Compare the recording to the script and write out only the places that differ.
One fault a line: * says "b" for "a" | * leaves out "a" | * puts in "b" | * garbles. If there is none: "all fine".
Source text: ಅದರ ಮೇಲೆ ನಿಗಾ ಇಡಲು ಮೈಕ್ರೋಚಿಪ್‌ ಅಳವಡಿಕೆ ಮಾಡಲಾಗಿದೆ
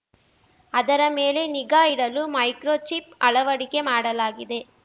all fine